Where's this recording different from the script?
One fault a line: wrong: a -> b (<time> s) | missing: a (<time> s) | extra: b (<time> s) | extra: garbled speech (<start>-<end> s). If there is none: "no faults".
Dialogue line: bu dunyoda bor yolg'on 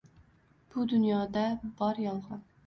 no faults